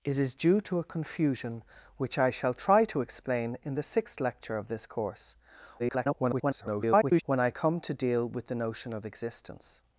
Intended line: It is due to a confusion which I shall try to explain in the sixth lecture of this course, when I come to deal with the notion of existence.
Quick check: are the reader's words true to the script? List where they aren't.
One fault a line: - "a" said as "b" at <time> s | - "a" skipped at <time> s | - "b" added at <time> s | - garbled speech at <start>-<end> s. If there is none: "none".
- garbled speech at 5.8-7.2 s